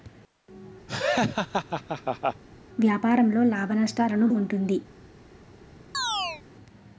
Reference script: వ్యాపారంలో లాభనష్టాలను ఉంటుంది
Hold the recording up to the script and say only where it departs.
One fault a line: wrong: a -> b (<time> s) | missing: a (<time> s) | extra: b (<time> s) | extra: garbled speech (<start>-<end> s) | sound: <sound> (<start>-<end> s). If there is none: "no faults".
sound: laugh (0.9-2.4 s)
sound: chirp (5.9-6.4 s)